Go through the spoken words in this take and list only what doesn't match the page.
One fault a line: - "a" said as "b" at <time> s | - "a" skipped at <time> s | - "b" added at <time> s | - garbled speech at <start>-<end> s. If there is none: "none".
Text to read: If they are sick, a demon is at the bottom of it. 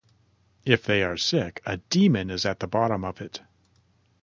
none